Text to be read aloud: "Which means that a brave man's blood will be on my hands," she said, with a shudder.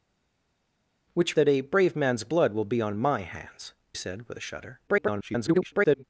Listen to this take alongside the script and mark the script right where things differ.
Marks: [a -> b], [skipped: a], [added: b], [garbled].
"Which [skipped: means] that a brave man's blood will be on my hands," [skipped: she] said, with a shudder. [garbled]